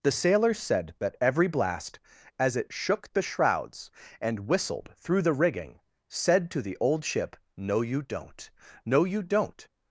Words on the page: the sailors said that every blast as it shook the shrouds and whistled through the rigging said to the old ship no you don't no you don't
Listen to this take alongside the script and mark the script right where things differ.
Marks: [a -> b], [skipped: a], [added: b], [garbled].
the sailors said that every blast as it shook the shrouds and whistled through the rigging said to the old ship no you don't no you don't